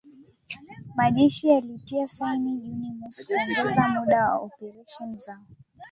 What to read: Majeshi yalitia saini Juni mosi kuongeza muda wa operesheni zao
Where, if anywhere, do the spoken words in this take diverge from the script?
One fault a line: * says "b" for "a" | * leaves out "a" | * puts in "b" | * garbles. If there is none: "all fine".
all fine